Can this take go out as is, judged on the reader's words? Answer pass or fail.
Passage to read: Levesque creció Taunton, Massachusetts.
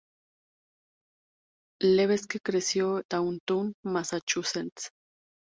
pass